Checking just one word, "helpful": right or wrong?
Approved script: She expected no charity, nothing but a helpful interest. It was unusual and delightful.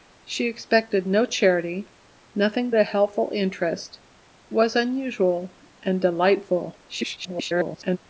right